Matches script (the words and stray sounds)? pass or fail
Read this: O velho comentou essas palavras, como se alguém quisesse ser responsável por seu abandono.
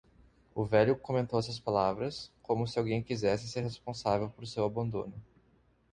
pass